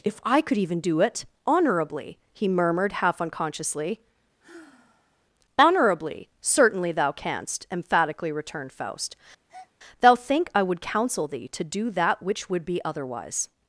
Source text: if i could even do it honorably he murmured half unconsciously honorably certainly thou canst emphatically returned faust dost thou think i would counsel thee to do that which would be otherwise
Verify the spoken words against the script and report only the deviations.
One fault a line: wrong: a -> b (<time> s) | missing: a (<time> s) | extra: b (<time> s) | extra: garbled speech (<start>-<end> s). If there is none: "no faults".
missing: dost (9.1 s)